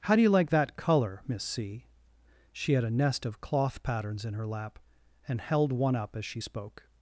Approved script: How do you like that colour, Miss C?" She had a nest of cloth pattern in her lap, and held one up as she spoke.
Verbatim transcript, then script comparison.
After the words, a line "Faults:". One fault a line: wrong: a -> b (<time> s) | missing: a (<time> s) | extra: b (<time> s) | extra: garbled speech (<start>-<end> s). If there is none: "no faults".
How do you like that colour, Miss C?" She had a nest of cloth patterns in her lap, and held one up as she spoke.
Faults:
wrong: pattern -> patterns (3.8 s)